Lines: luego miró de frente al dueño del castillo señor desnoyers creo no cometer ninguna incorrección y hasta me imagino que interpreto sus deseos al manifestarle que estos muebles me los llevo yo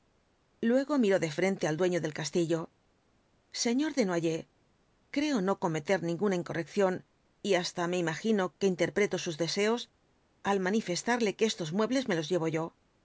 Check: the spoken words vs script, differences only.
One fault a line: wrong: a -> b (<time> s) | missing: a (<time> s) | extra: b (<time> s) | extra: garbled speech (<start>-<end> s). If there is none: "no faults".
no faults